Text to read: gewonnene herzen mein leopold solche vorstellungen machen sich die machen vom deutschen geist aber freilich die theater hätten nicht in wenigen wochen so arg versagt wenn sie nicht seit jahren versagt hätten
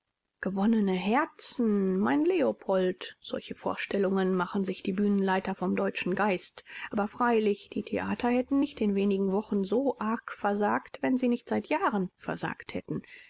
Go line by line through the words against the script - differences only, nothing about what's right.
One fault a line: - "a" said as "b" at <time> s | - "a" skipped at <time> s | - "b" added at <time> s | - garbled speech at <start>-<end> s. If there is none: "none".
- "machen" said as "bühnenleiter" at 4.9 s